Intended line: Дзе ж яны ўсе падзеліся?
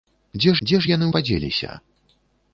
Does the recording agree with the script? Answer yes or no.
no